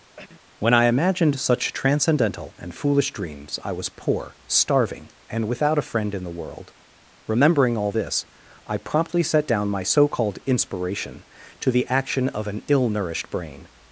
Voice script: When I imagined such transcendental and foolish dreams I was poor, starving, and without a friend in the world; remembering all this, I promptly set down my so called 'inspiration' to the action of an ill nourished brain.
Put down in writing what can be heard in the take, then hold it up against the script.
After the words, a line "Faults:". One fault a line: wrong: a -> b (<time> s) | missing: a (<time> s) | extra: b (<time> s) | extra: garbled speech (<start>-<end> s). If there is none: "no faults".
When I imagined such transcendental and foolish dreams I was poor, starving, and without a friend in the world; remembering all this, I promptly set down my so called 'inspiration' to the action of an ill nourished brain.
Faults:
no faults